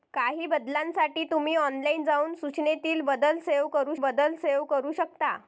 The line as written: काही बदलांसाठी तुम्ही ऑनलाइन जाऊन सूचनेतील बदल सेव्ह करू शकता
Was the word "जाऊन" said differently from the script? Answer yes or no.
no